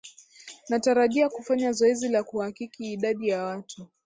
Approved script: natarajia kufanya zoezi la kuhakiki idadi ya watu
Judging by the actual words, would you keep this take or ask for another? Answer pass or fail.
pass